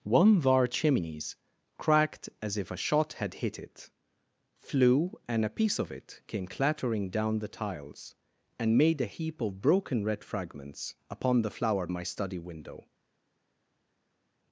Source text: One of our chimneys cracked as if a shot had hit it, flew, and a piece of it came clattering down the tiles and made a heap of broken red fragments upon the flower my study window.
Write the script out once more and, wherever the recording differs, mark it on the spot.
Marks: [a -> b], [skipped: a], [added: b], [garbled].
One of our chimneys cracked as if a shot had hit it, flew, and a piece of it came clattering down the tiles and made a heap of broken red fragments upon the flower my study window.